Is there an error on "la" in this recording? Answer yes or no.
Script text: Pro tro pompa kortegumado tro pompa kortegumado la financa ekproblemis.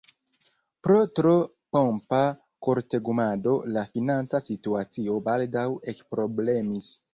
yes